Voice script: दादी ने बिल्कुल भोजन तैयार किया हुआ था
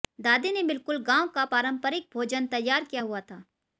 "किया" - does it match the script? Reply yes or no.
yes